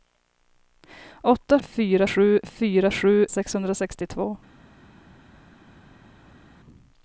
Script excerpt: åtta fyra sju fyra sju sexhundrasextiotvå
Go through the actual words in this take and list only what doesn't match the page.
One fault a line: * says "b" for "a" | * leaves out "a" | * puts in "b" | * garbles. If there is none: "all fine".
all fine